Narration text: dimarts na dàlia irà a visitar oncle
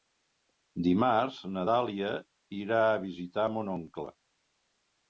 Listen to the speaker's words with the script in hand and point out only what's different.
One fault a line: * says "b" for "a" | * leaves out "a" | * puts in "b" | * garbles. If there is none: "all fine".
* puts in "mon"